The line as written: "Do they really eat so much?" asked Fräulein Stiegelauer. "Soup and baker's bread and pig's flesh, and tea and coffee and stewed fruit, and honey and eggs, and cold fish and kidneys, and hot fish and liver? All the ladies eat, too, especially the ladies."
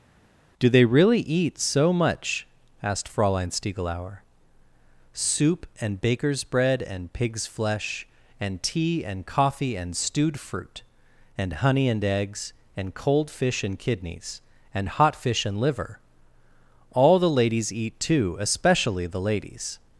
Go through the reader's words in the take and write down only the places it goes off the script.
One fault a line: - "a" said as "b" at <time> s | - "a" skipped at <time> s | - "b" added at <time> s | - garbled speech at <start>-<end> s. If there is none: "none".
none